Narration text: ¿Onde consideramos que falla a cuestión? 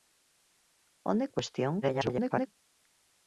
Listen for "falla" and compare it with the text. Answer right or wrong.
wrong